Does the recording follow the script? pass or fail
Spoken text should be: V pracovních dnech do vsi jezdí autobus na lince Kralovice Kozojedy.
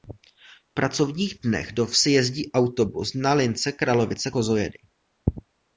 pass